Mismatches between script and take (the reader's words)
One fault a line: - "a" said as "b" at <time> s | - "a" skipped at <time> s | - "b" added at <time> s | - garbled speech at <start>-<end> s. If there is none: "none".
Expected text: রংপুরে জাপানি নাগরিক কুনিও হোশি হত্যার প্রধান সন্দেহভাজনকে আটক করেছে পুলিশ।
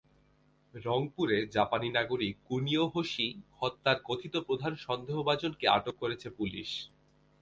- "কথিত" added at 4.0 s